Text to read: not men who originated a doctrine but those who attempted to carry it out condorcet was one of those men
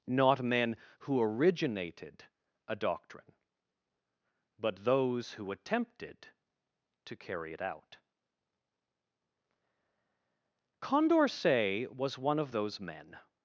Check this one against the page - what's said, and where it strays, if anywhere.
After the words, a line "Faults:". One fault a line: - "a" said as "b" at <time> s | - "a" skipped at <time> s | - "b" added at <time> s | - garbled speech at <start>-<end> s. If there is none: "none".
not men who originated a doctrine but those who attempted to carry it out condorcet was one of those men
Faults:
none